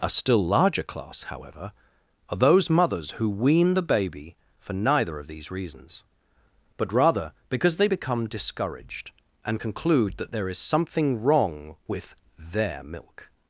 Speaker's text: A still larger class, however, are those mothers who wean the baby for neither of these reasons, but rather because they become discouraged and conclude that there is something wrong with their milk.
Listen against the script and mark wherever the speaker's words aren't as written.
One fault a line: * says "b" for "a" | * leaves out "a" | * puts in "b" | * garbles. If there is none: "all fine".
all fine